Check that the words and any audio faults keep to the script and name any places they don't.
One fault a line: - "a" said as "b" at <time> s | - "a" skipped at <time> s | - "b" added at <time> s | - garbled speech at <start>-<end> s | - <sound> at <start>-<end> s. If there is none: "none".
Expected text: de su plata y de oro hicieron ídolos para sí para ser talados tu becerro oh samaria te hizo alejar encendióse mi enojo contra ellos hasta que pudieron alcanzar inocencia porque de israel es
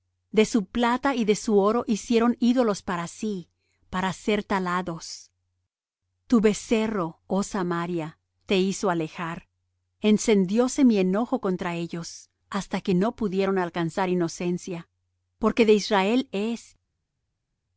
- "su" added at 1.4 s
- "no" added at 12.9 s